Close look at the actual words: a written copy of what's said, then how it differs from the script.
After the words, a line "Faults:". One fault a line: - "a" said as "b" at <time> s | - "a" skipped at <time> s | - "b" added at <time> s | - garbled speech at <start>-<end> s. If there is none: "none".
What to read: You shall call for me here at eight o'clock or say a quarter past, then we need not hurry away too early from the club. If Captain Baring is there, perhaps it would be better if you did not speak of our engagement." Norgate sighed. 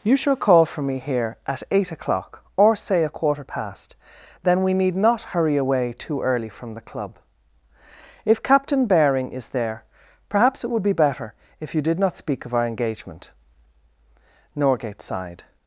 You shall call for me here at eight o'clock or say a quarter past, then we need not hurry away too early from the club. If Captain Baring is there, perhaps it would be better if you did not speak of our engagement." Norgate sighed.
Faults:
none